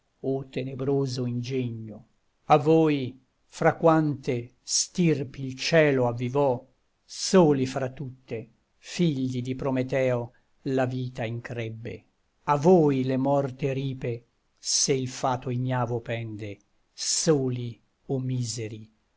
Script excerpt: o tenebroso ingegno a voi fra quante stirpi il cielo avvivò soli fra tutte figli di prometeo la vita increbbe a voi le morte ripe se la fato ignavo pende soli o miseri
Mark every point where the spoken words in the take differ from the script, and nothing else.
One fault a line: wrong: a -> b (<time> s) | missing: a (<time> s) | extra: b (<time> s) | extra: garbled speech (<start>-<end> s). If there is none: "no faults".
wrong: la -> il (14.9 s)